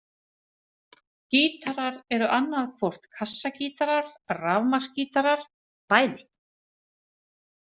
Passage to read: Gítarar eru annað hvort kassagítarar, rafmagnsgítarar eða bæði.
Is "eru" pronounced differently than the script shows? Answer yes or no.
no